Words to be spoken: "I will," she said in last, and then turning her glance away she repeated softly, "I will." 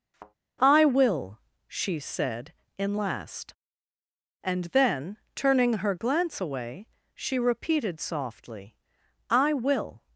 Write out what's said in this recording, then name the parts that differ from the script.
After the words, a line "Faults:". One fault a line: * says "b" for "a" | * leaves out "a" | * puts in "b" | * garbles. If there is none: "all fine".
"I will," she said in last, and then turning her glance away she repeated softly, "I will."
Faults:
all fine